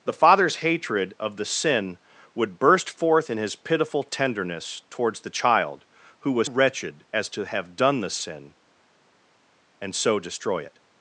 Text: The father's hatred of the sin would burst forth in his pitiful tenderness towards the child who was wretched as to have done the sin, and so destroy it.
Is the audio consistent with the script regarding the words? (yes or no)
yes